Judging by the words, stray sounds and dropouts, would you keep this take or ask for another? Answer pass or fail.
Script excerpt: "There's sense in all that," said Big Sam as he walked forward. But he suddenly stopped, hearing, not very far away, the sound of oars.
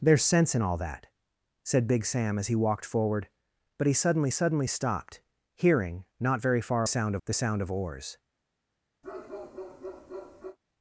fail